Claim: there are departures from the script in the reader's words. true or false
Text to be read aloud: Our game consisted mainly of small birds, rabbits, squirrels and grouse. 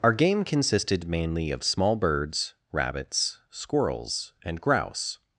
false